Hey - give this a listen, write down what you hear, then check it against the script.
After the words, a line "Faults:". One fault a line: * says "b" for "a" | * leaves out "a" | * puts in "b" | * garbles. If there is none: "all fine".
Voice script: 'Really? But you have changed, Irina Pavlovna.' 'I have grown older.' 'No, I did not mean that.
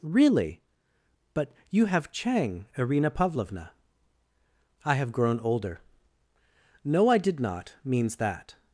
'Really? But you have chang, Irina Pavlovna.' 'I have grown older.' 'No, I did not means that.
Faults:
* says "chang" for "changed"
* says "means" for "mean"